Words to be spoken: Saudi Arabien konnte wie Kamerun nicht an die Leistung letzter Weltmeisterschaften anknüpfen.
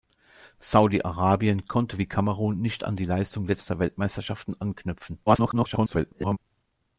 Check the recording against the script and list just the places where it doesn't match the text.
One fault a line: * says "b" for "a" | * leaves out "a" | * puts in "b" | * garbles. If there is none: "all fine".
* garbles